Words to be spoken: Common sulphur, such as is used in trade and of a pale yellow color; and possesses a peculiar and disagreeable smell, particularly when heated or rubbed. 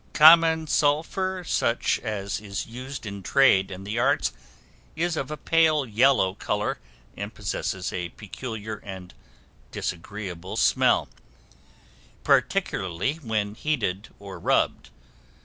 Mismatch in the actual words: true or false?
true